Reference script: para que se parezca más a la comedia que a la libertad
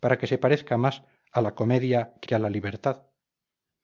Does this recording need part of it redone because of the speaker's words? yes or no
yes